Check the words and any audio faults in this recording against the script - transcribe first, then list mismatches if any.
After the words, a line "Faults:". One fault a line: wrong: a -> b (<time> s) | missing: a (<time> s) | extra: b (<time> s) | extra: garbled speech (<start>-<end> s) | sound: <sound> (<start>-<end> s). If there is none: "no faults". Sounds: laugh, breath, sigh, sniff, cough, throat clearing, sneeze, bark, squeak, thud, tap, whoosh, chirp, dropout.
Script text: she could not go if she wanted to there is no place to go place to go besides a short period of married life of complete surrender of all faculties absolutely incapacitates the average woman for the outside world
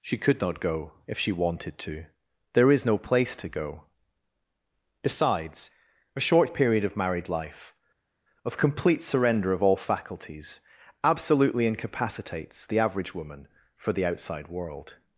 she could not go if she wanted to there is no place to go besides a short period of married life of complete surrender of all faculties absolutely incapacitates the average woman for the outside world
Faults:
missing: place to go (3.8 s)